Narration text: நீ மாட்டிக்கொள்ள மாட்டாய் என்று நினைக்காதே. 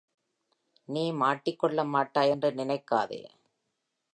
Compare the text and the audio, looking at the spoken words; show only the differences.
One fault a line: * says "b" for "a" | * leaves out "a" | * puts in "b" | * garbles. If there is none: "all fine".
all fine